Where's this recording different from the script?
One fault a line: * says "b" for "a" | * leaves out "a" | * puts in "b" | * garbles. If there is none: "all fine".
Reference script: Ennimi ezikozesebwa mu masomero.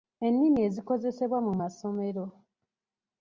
all fine